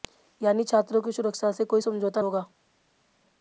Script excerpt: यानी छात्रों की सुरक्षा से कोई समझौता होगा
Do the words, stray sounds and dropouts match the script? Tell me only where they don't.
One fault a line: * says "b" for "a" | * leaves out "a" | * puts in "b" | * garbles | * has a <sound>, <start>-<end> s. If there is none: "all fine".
all fine